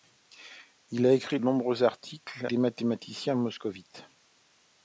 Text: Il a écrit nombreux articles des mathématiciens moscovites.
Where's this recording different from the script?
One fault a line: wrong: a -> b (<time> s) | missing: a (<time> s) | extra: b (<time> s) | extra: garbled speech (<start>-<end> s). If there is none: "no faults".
no faults